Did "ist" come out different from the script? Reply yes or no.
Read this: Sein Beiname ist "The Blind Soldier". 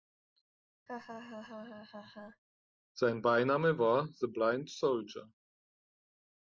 yes